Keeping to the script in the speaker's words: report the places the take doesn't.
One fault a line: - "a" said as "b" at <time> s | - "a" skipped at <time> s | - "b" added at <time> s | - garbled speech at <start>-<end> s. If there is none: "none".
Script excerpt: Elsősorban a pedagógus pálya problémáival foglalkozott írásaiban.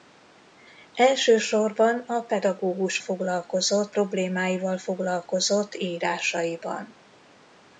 - "pálya" said as "foglalkozott" at 3.0 s